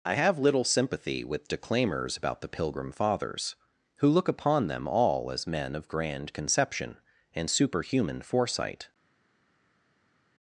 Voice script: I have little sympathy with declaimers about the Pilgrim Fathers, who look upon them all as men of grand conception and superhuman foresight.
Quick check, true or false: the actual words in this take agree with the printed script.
true